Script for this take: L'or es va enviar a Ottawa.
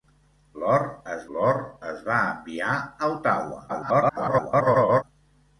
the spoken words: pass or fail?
fail